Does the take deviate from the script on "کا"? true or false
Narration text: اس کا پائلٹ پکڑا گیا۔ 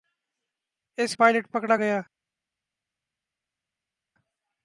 true